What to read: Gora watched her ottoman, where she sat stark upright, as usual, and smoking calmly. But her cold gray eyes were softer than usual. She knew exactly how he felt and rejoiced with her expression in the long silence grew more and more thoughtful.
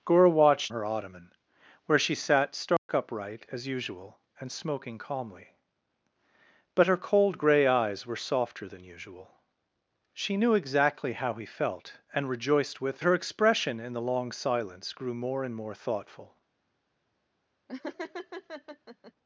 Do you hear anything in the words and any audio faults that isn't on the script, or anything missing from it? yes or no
yes